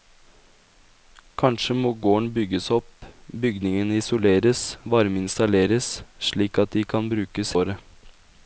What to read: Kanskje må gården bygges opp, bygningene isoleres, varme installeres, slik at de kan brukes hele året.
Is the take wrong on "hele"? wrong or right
wrong